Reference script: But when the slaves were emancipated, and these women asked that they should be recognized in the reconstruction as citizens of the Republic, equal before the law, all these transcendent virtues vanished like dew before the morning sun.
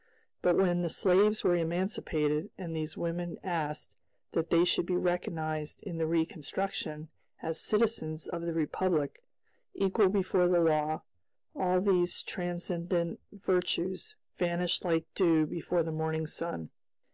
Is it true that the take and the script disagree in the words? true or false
false